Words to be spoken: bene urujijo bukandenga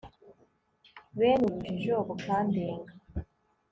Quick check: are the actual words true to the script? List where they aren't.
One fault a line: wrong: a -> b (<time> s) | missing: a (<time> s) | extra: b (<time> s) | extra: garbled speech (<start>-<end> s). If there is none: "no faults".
no faults